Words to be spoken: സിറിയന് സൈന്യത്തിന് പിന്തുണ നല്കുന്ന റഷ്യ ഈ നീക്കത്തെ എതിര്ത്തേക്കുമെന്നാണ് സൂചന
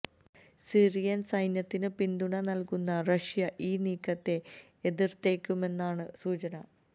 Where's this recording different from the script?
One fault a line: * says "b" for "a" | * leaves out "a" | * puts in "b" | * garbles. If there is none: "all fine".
all fine